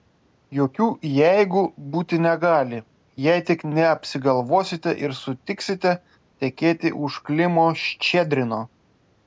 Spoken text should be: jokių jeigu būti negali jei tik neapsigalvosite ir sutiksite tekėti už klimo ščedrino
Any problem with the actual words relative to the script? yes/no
no